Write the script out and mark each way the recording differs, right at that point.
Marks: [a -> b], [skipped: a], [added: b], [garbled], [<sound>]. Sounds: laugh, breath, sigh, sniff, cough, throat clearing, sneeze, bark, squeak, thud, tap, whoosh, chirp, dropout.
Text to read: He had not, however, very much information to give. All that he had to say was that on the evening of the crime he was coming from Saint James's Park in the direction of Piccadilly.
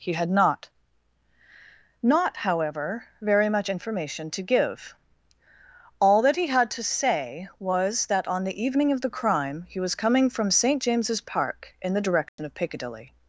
He had not, [added: not] however, very much information to give. All that he had to say was that on the evening of the crime he was coming from Saint James's Park in the direction [dropout] of Piccadilly.